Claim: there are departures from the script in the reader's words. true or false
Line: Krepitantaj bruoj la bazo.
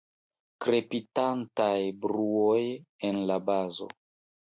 true